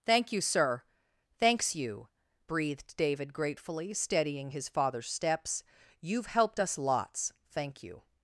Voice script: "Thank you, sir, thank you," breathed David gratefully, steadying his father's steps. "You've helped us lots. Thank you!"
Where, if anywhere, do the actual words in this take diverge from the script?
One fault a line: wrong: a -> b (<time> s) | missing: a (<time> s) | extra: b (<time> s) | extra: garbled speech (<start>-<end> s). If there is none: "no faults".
wrong: thank -> thanks (1.4 s)